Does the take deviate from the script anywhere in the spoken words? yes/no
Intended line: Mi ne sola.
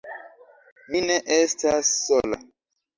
yes